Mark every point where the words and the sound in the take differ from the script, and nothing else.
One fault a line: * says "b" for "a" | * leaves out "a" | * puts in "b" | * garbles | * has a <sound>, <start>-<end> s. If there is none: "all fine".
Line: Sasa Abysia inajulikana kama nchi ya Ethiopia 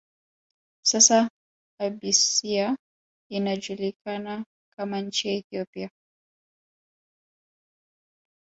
all fine